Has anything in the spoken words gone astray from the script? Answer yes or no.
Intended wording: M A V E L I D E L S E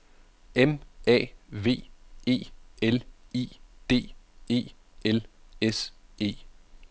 no